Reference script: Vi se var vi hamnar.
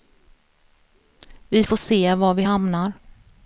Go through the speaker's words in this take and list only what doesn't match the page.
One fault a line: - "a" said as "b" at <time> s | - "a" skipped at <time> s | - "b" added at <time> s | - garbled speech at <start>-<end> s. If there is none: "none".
- "får" added at 1.6 s